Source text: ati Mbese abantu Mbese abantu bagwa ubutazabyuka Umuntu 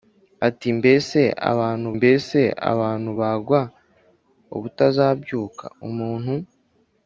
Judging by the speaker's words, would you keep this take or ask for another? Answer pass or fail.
pass